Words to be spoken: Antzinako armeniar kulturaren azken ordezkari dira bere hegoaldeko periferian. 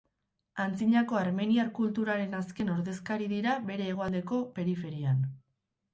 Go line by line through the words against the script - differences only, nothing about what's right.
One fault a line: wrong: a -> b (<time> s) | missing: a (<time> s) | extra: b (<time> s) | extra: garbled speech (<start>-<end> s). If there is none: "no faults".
no faults